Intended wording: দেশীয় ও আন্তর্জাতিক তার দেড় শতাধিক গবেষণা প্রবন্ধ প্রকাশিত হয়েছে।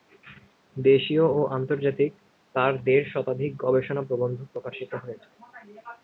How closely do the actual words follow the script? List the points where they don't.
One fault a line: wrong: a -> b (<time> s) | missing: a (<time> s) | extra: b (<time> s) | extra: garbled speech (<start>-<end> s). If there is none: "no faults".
no faults